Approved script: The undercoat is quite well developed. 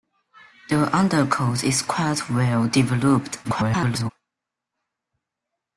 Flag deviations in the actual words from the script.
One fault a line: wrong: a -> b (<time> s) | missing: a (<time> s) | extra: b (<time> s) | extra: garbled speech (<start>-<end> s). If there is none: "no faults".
extra: garbled speech (3.4-4.1 s)